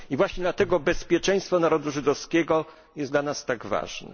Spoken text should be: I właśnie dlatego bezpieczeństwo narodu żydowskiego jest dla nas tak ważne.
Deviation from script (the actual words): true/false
false